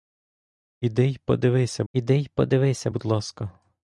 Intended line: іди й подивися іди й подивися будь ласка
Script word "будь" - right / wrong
right